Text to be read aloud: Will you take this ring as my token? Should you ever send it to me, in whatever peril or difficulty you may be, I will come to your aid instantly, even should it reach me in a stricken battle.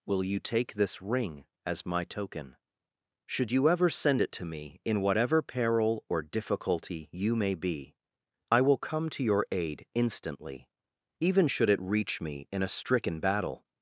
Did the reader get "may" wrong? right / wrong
right